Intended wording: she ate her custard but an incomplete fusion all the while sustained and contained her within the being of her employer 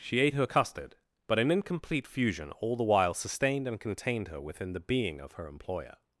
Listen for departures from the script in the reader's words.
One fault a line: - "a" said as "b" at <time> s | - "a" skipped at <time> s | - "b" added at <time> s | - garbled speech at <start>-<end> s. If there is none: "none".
none